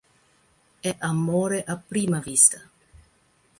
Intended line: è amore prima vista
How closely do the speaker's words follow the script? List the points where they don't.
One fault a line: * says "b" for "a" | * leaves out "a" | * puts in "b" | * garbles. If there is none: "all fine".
* puts in "a"